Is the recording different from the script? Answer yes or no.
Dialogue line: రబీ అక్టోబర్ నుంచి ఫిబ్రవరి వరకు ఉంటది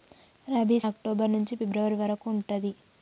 no